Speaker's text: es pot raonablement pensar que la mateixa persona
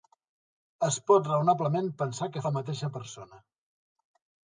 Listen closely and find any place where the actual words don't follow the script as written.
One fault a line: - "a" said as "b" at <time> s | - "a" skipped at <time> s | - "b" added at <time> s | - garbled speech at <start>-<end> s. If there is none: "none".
none